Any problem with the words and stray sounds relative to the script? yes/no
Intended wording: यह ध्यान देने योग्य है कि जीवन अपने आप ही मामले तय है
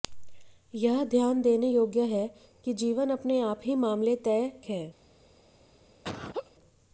yes